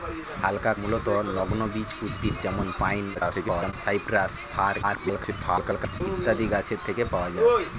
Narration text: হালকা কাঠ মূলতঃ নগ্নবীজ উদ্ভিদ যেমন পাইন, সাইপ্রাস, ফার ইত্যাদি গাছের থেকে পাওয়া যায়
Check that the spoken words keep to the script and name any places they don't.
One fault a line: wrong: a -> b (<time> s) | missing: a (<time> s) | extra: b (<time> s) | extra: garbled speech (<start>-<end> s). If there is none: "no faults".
missing: কাঠ (0.7 s)
extra: garbled speech (3.1-3.7 s)
extra: garbled speech (4.8-6.0 s)